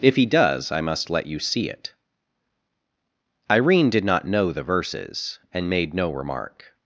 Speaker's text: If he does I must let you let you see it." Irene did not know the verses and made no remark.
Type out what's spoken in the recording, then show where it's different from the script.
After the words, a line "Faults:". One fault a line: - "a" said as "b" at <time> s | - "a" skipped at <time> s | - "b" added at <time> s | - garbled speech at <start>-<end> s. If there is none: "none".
If he does I must let you see it." Irene did not know the verses and made no remark.
Faults:
- "let you" skipped at 1.4 s